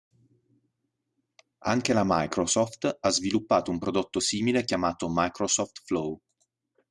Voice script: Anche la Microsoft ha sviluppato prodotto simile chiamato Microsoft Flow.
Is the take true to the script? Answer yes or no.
no